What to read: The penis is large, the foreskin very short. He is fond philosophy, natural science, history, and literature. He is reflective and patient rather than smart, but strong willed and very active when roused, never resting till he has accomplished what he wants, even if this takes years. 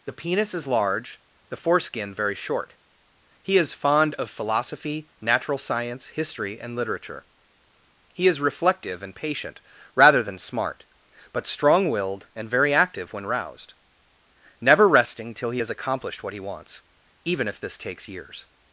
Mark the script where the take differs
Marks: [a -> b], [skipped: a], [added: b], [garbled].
The penis is large, the foreskin very short. He is fond [added: of] philosophy, natural science, history, and literature. He is reflective and patient rather than smart, but strong willed and very active when roused, never resting till he has accomplished what he wants, even if this takes years.